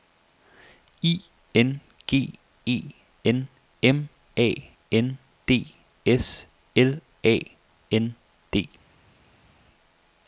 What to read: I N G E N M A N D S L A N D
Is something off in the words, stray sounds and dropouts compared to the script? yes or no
no